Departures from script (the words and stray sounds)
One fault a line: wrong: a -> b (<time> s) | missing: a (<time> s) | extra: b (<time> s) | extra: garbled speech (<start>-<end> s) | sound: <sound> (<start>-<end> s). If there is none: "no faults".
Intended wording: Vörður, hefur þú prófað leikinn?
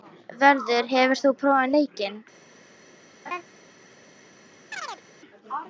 sound: laugh (3.3-3.4 s)
sound: chirp (4.7-5.0 s)